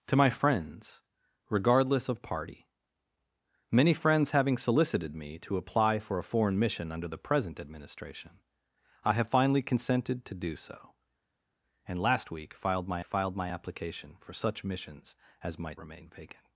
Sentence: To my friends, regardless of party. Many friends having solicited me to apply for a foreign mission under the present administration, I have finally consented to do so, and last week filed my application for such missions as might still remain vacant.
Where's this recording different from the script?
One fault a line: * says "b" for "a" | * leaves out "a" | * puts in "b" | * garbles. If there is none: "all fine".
* puts in "filed my"
* leaves out "still"